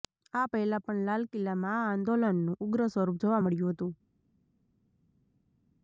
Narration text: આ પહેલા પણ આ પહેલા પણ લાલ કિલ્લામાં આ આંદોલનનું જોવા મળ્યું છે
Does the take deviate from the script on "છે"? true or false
true